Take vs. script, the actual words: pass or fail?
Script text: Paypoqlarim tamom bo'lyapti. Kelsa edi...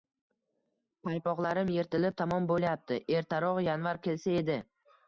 fail